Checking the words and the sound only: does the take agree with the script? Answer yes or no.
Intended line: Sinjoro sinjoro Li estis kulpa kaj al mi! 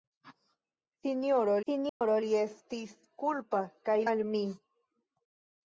no